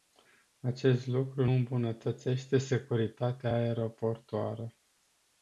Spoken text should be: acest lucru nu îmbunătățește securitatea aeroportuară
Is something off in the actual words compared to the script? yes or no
yes